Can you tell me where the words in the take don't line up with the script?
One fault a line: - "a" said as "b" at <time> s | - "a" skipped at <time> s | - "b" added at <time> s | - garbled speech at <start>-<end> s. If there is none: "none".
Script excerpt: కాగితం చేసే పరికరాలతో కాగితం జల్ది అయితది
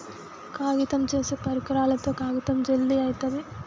none